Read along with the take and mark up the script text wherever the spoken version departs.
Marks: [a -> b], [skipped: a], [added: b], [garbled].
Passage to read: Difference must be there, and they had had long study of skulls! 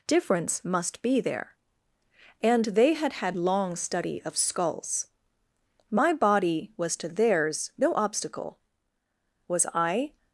Difference must be there, and they had had long study of skulls! [added: My body was to theirs no obstacle was I]